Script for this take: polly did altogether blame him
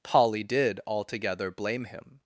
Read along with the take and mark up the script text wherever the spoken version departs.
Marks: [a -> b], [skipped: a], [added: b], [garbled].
polly did altogether blame him